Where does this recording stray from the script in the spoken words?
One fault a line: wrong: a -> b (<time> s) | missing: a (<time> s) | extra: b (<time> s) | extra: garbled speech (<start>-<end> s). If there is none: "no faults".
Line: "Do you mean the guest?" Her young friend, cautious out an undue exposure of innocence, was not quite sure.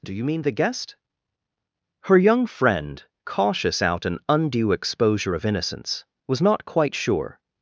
no faults